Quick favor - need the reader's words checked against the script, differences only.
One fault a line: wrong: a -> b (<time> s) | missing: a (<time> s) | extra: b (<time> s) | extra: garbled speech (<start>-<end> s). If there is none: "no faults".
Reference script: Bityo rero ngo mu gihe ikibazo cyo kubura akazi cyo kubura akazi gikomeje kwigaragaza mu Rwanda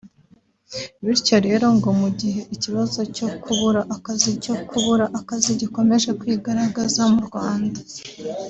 no faults